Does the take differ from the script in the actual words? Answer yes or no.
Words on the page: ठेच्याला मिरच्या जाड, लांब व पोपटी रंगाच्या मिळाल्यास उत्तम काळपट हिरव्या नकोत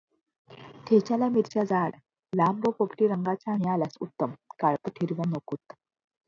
no